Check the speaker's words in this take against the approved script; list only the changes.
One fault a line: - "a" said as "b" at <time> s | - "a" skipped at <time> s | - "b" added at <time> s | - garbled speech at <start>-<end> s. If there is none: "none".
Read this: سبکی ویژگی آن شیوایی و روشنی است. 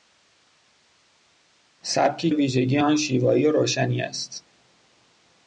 none